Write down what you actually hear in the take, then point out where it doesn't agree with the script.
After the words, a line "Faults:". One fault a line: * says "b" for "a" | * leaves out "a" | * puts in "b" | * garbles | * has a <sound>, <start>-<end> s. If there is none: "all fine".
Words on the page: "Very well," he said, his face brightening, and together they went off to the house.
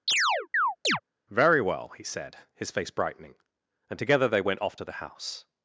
"Very well," he said, his face brightening, and together they went off to the house.
Faults:
* has a chirp, 0.1-1.0 s